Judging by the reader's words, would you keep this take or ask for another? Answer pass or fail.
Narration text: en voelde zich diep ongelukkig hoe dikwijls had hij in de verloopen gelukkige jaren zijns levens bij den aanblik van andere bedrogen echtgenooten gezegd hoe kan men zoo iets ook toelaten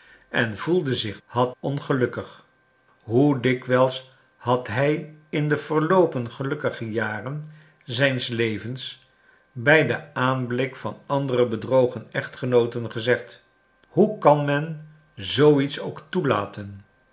fail